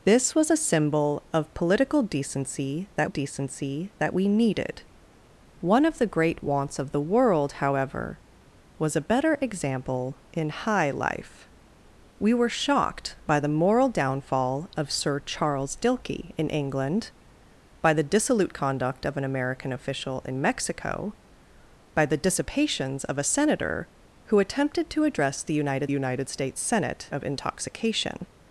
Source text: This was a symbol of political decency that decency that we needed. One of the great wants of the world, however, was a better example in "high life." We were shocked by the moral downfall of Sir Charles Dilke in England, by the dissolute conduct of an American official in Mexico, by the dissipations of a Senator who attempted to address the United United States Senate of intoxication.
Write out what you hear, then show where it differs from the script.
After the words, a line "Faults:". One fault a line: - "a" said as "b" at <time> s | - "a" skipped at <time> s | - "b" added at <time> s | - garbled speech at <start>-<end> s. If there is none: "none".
This was a symbol of political decency that decency that we needed. One of the great wants of the world, however, was a better example in "high life." We were shocked by the moral downfall of Sir Charles Dilke in England, by the dissolute conduct of an American official in Mexico, by the dissipations of a Senator who attempted to address the United United States Senate of intoxication.
Faults:
none